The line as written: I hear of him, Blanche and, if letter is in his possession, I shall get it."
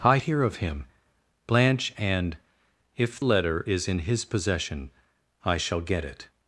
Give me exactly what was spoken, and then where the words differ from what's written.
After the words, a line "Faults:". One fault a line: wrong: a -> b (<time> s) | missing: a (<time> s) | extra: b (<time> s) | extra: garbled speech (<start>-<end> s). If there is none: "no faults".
I hear of him, Blanche and, if letter is in his possession, I shall get it."
Faults:
no faults